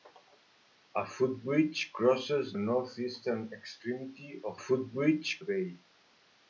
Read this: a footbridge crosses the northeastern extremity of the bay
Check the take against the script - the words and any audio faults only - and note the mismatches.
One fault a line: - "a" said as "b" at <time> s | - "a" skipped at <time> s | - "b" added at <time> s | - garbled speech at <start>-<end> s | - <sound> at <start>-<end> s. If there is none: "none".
- "the" skipped at 2.6 s
- "the" said as "footbridge" at 4.5 s